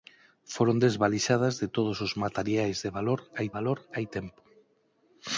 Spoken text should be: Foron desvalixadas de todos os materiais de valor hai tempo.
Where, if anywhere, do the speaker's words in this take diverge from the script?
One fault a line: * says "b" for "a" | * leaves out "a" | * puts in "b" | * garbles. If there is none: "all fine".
* puts in "valor hai"